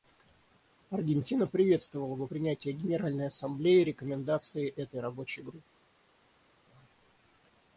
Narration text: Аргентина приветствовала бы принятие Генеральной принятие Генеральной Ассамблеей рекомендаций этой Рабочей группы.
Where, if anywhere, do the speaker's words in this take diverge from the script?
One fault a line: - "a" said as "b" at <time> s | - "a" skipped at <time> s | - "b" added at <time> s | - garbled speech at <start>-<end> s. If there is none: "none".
- "принятие Генеральной" skipped at 3.3 s